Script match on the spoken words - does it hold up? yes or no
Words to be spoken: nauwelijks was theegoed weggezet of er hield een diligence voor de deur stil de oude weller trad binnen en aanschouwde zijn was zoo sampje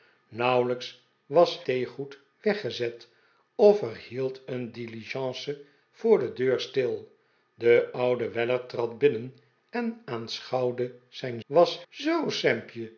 yes